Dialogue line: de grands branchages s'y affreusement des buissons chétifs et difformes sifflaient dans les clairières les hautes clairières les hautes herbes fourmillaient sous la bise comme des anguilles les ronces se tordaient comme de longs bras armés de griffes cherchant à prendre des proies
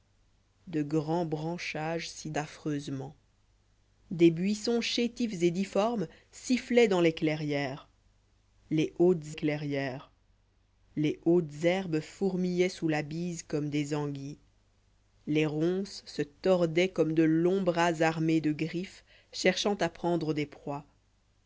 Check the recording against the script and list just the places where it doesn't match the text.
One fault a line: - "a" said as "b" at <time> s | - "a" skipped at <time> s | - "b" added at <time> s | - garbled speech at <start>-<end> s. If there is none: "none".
none